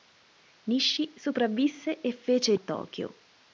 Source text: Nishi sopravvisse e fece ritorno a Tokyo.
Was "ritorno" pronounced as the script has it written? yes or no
no